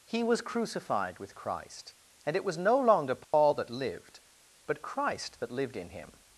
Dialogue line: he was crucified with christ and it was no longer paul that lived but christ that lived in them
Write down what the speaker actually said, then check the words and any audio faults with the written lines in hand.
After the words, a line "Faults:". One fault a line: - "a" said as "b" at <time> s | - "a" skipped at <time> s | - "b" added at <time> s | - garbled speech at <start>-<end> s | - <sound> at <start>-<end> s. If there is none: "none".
he was crucified with christ and it was no longer paul that lived but christ that lived in him
Faults:
- dropout at 3.2-3.3 s
- "them" said as "him" at 5.9 s